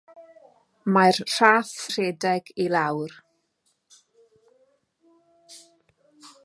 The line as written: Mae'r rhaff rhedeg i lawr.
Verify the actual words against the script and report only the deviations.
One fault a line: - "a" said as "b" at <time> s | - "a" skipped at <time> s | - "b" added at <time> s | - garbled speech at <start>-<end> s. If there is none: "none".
none